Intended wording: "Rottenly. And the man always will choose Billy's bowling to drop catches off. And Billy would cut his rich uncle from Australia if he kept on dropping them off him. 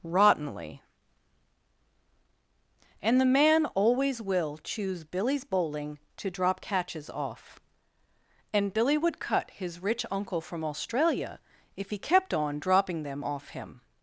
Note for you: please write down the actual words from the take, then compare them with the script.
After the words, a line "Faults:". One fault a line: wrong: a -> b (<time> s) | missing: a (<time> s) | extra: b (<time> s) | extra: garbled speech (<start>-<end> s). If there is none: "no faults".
"Rottenly. And the man always will choose Billy's bowling to drop catches off. And Billy would cut his rich uncle from Australia if he kept on dropping them off him.
Faults:
no faults